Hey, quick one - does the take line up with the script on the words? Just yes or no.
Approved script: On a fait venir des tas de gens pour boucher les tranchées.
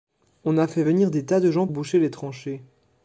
no